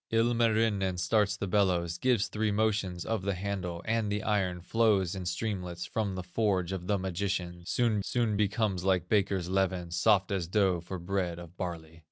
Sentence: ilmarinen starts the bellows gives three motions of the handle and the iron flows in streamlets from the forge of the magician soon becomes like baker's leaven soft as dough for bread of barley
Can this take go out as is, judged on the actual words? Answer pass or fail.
fail